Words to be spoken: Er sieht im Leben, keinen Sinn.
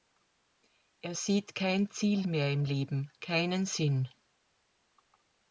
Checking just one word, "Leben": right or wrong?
right